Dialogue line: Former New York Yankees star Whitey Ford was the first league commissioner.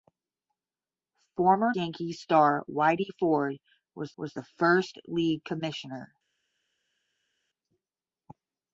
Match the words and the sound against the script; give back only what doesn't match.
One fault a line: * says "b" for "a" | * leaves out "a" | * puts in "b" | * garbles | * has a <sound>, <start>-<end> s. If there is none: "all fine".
* leaves out "New York"
* puts in "was"